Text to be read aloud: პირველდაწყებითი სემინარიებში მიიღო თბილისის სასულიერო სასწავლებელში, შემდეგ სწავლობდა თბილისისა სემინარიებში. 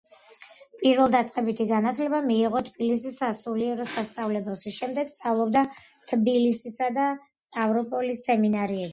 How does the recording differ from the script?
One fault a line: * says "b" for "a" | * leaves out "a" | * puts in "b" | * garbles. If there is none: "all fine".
* says "განათლება" for "სემინარიებში"
* puts in "და სტავროპოლის"